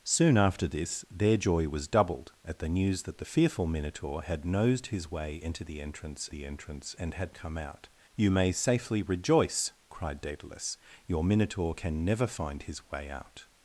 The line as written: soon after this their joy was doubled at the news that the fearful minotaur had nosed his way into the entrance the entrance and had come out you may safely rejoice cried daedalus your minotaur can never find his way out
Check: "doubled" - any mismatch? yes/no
no